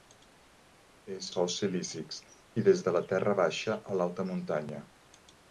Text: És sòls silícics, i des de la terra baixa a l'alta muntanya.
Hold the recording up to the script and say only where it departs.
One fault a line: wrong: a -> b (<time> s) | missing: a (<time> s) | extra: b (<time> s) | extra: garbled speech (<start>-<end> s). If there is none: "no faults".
no faults